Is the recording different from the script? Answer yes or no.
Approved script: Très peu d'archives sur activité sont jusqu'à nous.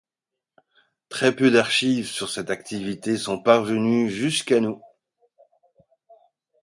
yes